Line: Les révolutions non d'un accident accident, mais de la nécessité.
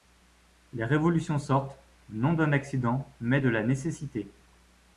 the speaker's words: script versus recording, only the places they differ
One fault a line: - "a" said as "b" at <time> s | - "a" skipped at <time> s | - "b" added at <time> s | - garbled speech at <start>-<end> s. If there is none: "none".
- "sortent" added at 1.4 s
- "accident" skipped at 3.1 s